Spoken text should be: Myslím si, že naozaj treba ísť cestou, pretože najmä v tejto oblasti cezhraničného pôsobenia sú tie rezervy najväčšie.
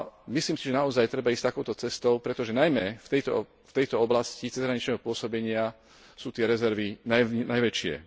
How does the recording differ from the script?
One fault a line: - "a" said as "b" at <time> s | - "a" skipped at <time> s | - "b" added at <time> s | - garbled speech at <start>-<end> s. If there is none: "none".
- "takouto" added at 1.5 s